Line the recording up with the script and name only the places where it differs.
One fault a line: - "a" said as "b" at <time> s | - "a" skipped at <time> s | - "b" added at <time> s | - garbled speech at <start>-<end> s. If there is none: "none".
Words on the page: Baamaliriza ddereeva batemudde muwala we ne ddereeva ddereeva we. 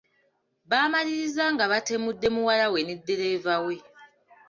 - "ddereeva" said as "nga" at 1.5 s
- "ddereeva" skipped at 3.5 s